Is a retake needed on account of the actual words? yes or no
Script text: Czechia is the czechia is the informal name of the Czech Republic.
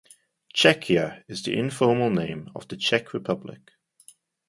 yes